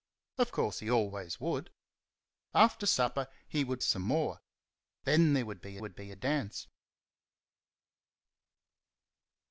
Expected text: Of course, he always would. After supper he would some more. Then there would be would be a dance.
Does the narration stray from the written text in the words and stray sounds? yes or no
no